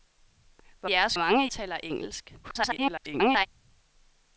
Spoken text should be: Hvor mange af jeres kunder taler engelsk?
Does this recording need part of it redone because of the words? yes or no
yes